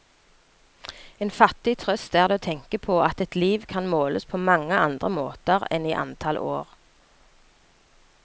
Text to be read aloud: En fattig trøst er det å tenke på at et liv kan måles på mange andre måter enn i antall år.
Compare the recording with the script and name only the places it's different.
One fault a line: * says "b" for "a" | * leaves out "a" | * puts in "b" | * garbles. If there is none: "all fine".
all fine